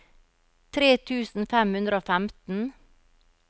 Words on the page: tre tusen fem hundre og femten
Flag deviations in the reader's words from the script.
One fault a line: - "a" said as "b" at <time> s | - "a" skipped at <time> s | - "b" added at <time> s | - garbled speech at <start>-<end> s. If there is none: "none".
none